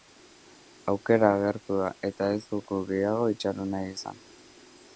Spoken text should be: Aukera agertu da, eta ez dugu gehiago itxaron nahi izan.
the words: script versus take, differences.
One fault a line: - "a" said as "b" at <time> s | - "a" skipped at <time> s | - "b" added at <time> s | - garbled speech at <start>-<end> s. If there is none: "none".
none